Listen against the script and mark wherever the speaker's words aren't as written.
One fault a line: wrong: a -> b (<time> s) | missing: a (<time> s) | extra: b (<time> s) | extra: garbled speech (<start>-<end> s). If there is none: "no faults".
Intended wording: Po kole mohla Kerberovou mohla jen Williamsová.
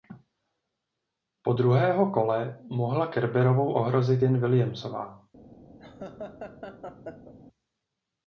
extra: druhého (1.5 s)
wrong: mohla -> ohrozit (3.7 s)